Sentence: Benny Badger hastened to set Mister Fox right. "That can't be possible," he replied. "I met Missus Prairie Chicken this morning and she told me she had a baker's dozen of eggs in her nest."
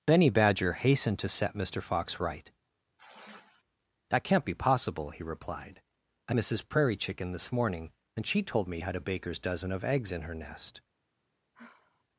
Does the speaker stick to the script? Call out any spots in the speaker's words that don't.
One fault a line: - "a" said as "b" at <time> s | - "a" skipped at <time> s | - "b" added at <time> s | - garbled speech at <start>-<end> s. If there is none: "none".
- "met" skipped at 6.3 s
- "she" skipped at 8.8 s